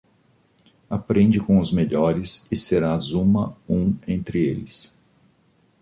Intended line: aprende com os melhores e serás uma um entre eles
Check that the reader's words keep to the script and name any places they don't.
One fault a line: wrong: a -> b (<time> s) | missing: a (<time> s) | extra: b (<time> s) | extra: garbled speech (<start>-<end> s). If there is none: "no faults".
no faults